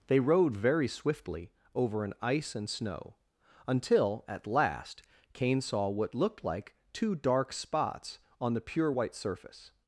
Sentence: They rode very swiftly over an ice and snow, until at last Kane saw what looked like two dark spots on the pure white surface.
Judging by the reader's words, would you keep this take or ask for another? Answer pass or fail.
pass